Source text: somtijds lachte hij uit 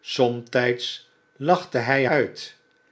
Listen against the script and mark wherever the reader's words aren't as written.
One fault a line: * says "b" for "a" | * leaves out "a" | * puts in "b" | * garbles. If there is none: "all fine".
all fine